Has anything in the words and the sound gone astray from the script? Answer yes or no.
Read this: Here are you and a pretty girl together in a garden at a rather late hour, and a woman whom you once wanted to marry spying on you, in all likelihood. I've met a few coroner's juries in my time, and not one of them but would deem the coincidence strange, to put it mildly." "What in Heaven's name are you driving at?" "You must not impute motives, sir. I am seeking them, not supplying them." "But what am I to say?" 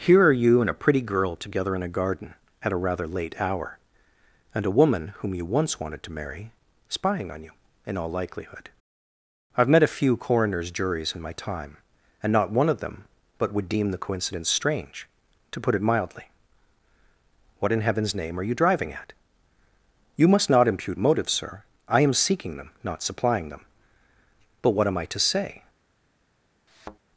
yes